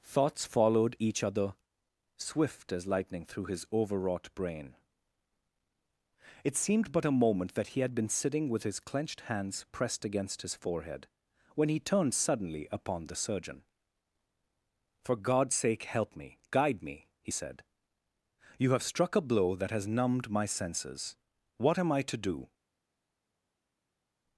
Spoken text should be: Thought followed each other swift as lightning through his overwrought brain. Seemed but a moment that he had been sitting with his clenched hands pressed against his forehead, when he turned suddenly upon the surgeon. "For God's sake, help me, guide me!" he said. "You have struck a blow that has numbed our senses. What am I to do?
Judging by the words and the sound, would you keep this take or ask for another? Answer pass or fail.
fail